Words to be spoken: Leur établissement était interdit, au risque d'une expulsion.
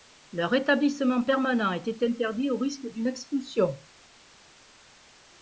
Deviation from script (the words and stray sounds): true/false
true